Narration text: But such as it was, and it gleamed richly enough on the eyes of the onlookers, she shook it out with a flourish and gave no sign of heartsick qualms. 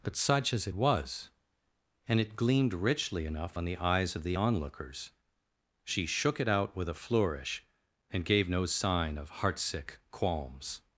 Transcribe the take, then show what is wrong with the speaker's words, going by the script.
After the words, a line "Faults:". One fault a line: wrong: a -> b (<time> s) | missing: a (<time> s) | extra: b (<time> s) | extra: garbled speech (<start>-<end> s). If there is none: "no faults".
But such as it was, and it gleamed richly enough on the eyes of the onlookers, she shook it out with a flourish and gave no sign of heartsick qualms.
Faults:
no faults